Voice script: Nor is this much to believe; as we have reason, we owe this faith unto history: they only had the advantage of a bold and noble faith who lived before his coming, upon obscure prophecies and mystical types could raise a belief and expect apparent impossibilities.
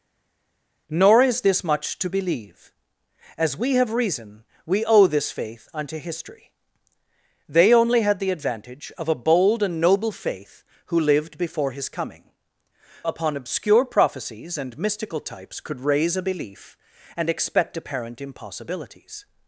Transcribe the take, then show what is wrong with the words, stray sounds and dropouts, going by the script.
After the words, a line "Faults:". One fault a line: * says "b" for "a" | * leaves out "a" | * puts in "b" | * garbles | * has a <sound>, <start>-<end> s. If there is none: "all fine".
Nor is this much to believe; as we have reason, we owe this faith unto history: they only had the advantage of a bold and noble faith who lived before his coming, upon obscure prophecies and mystical types could raise a belief and expect apparent impossibilities.
Faults:
all fine